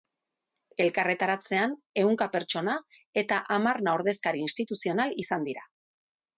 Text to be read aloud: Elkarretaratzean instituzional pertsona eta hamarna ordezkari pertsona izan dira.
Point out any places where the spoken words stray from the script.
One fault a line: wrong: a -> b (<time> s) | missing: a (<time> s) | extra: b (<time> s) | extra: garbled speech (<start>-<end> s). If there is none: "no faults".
wrong: instituzional -> ehunka (2.0 s)
wrong: pertsona -> instituzional (4.5 s)